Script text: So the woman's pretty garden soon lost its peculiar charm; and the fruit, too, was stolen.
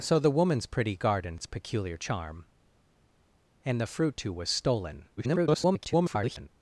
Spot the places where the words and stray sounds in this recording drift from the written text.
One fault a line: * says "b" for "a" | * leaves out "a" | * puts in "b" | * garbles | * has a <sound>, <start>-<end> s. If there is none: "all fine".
* leaves out "soon lost"
* garbles